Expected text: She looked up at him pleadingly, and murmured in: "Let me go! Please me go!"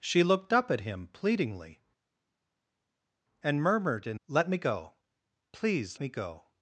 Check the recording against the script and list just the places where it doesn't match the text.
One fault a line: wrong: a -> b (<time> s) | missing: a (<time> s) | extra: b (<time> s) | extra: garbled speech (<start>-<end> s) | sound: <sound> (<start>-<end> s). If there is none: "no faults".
no faults